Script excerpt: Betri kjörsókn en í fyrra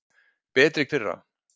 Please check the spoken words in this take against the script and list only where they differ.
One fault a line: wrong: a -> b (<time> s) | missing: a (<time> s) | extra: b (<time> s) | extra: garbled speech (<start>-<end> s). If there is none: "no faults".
missing: kjörsókn en (0.8 s)